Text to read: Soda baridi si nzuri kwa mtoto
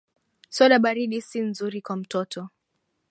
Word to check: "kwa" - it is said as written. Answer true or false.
true